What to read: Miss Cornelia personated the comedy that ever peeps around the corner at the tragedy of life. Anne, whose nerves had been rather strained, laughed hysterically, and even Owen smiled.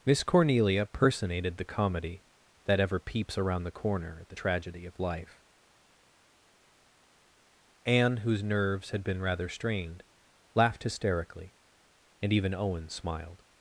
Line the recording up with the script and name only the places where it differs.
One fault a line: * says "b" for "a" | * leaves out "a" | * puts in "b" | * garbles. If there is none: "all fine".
all fine